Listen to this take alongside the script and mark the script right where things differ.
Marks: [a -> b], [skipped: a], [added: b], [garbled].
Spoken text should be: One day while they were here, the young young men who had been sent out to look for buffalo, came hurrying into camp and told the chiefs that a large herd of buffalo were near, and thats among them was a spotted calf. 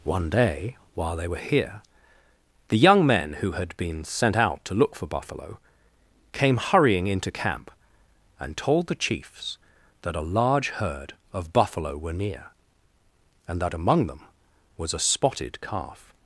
One day while they were here, the young [skipped: young] men who had been sent out to look for buffalo, came hurrying into camp and told the chiefs that a large herd of buffalo were near, and [thats -> that] among them was a spotted calf.